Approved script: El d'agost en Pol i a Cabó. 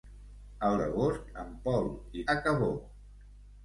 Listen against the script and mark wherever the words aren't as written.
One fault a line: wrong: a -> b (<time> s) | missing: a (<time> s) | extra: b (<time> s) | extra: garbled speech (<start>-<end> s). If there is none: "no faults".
no faults